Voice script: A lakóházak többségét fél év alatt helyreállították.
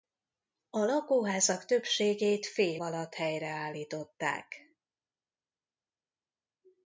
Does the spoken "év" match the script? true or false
false